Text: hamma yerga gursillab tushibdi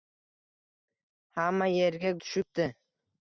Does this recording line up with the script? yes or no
no